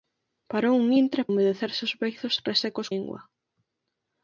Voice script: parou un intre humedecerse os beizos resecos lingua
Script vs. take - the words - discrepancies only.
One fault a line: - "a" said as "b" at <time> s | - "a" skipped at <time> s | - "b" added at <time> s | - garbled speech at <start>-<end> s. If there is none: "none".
none